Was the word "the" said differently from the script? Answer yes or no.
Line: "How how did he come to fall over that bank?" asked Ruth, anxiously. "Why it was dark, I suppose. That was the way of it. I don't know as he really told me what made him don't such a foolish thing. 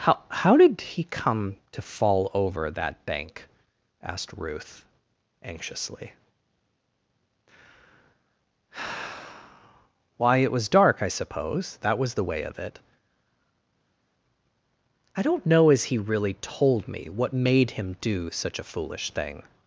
no